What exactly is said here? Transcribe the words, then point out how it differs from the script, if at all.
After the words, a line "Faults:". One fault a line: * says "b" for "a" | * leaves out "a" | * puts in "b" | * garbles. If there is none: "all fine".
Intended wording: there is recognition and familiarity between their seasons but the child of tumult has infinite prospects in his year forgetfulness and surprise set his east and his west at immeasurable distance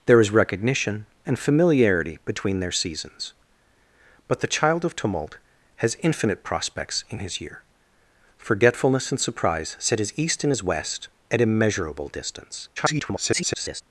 there is recognition and familiarity between their seasons but the child of tumult has infinite prospects in his year forgetfulness and surprise set his east and his west at immeasurable distance [garbled]
Faults:
* garbles